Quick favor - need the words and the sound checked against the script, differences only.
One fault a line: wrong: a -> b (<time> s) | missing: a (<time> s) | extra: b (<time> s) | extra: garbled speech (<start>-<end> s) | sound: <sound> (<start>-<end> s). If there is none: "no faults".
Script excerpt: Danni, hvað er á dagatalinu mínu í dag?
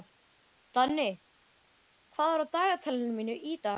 no faults